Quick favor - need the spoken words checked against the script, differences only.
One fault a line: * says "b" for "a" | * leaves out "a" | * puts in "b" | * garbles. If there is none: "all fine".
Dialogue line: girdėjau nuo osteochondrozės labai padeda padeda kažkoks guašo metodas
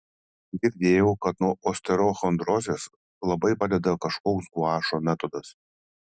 * puts in "kad"
* leaves out "padeda"